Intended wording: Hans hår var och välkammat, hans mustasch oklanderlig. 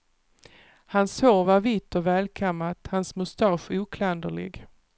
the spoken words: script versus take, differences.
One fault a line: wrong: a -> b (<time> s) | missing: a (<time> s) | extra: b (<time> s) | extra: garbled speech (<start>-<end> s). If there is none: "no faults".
extra: vitt (1.6 s)